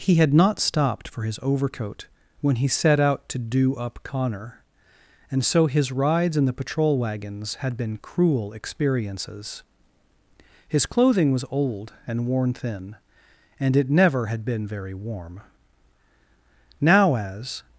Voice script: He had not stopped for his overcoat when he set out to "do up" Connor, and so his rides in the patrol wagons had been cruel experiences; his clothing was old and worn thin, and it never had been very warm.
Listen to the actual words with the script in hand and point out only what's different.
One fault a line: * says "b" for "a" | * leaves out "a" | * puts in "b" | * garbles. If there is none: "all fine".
* puts in "Now as"